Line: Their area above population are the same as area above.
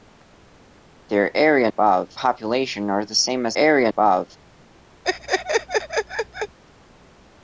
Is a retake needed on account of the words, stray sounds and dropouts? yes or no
yes